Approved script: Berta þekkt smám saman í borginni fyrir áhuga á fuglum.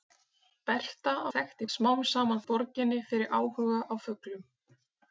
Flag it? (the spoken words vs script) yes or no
no